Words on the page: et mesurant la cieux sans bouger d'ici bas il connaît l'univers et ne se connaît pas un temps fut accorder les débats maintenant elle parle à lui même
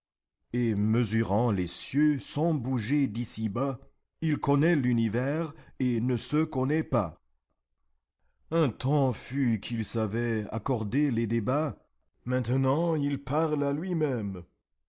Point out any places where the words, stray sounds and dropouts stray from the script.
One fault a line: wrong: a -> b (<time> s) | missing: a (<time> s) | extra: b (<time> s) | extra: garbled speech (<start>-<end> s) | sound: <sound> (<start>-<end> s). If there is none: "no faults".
wrong: la -> les (1.5 s)
extra: qu'il savait (9.6 s)
wrong: elle -> il (12.9 s)